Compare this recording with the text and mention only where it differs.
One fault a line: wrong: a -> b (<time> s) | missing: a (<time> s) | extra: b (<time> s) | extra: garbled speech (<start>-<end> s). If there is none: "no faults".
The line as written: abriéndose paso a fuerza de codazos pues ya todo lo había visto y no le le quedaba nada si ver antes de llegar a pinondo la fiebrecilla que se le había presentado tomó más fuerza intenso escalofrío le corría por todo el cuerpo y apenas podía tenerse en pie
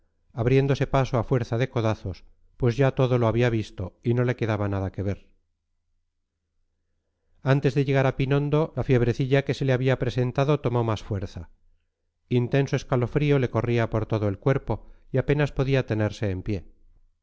missing: le (4.3 s)
wrong: si -> que (4.9 s)